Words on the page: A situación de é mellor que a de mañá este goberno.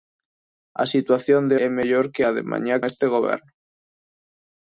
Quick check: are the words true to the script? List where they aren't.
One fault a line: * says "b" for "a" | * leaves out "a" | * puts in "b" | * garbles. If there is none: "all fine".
all fine